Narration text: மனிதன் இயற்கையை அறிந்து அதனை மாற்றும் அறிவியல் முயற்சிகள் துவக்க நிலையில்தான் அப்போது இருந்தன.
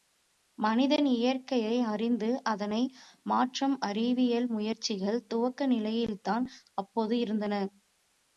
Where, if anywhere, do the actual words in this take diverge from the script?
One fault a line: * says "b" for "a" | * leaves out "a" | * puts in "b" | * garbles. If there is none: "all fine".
all fine